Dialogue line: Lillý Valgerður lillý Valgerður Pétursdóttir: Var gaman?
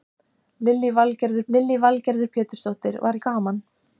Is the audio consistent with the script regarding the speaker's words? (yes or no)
yes